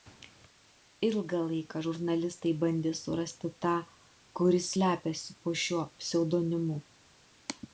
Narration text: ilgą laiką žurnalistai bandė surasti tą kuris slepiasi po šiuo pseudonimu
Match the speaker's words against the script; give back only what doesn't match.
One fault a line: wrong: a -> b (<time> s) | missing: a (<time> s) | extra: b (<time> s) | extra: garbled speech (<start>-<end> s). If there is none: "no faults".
no faults